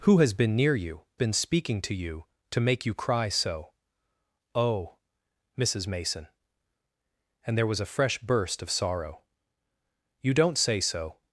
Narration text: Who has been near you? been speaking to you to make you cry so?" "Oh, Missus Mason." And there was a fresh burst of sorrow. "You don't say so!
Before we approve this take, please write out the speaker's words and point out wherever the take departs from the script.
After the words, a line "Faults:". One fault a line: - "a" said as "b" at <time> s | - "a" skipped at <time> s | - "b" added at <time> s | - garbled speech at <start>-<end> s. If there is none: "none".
Who has been near you? been speaking to you to make you cry so?" "Oh, Missus Mason." And there was a fresh burst of sorrow. "You don't say so!
Faults:
none